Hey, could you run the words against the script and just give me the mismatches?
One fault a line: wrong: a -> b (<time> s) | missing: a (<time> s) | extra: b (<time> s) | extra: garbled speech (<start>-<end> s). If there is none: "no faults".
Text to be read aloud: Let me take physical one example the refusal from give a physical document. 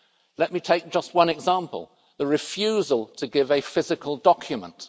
wrong: physical -> just (0.9 s)
wrong: from -> to (3.2 s)